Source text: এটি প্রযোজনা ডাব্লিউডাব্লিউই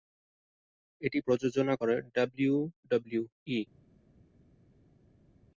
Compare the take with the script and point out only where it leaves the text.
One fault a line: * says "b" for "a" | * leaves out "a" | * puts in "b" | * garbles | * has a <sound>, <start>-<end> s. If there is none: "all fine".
* puts in "করে"